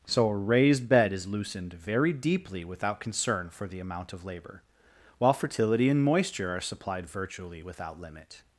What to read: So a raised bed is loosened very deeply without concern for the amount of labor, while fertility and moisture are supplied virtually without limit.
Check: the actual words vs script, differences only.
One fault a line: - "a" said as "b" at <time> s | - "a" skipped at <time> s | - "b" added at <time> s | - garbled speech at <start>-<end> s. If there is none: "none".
none